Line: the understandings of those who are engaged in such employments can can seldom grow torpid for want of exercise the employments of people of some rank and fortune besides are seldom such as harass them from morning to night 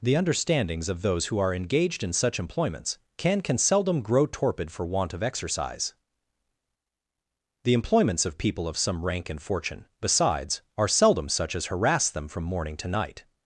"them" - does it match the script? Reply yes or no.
yes